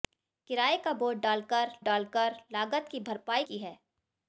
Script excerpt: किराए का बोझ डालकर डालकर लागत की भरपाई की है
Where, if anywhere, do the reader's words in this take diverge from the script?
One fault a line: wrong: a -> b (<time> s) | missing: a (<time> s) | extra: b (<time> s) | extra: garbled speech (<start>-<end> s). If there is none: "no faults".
no faults